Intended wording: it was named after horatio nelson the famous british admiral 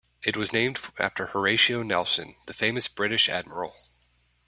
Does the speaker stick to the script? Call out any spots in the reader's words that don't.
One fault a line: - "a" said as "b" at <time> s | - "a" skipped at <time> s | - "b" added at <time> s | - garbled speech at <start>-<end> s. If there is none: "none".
none